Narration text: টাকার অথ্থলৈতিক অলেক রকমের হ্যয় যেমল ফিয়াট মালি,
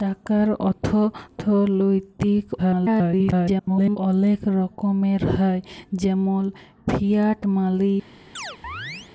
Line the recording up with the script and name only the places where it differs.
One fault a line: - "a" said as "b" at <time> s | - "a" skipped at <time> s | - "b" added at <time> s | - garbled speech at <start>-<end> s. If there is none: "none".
- garbled speech at 2.6-4.0 s